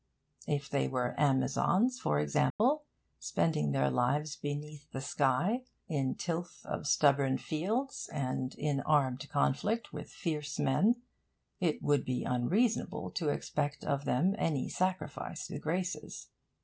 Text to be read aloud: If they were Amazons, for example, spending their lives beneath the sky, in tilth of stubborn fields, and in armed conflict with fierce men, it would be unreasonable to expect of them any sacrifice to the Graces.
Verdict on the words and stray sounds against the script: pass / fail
fail